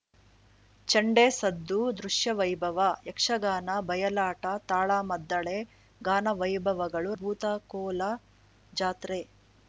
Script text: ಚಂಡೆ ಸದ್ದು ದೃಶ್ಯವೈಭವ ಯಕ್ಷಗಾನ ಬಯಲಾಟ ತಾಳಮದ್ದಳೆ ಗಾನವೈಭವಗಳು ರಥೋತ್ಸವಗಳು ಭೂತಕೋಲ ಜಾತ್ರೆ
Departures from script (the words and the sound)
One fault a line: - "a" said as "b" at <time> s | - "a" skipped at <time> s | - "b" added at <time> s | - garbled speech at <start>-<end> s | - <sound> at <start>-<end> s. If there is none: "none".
- "ರಥೋತ್ಸವಗಳು" skipped at 7.1 s